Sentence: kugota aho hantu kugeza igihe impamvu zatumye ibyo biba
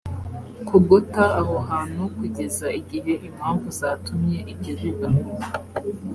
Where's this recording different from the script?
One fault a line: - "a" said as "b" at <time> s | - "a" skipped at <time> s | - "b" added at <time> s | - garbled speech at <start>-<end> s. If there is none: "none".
none